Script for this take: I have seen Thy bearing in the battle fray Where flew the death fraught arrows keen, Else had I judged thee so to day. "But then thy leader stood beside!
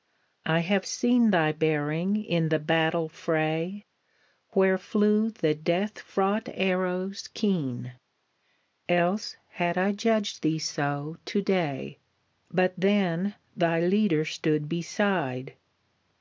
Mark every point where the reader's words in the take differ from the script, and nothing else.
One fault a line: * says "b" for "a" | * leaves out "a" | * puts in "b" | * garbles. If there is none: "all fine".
all fine